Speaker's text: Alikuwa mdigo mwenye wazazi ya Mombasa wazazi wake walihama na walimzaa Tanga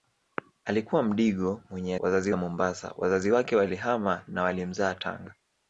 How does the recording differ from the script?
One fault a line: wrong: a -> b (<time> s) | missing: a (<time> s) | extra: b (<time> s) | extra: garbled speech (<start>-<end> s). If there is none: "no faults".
no faults